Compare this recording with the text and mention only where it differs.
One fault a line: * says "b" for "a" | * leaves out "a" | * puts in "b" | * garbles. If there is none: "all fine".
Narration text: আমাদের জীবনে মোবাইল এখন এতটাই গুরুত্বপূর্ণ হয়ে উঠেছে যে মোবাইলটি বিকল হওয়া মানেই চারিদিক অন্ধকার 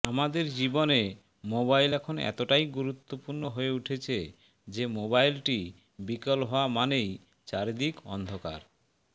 all fine